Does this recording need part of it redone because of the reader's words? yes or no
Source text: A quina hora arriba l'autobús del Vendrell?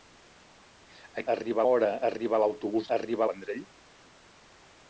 yes